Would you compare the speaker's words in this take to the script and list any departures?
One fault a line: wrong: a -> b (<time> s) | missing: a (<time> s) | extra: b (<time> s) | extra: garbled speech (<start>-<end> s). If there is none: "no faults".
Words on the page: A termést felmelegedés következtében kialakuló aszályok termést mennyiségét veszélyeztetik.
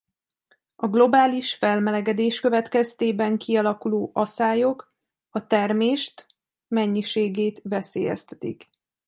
wrong: termést -> globális (0.9 s)
extra: a (5.3 s)